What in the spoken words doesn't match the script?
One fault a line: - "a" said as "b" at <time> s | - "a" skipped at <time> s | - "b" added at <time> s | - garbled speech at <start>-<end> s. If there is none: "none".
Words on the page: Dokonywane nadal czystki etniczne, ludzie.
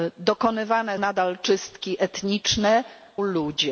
none